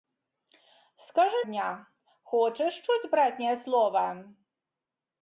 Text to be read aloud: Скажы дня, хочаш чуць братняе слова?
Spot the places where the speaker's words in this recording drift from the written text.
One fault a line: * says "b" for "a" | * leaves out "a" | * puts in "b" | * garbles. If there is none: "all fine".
all fine